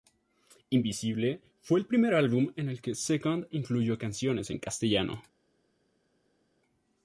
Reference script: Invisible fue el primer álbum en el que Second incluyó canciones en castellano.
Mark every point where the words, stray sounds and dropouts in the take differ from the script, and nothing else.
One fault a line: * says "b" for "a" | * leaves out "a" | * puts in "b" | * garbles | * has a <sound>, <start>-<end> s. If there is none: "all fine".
all fine